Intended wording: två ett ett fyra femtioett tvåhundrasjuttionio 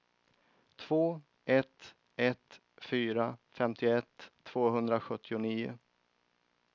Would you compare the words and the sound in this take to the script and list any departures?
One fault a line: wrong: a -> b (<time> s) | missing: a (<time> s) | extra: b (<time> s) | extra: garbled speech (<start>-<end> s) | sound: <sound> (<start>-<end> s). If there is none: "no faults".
no faults